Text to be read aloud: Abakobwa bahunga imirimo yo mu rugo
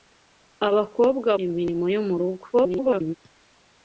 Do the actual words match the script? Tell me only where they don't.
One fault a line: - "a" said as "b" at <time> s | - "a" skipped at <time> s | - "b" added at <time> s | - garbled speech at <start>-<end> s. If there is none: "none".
- "bahunga" skipped at 1.3 s
- garbled speech at 2.5-3.2 s